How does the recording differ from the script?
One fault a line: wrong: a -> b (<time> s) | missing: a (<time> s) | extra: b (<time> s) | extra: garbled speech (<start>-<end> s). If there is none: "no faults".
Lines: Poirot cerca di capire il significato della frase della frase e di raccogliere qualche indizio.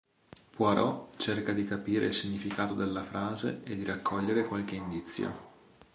missing: della frase (3.6 s)